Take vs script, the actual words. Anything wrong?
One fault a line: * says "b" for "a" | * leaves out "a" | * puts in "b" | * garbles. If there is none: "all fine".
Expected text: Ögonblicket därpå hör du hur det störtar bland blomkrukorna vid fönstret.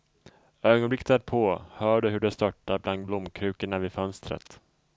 all fine